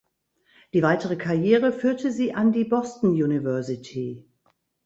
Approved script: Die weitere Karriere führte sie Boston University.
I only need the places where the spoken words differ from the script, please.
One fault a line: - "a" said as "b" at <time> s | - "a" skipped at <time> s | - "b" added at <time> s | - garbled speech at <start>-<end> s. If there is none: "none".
- "an die" added at 2.3 s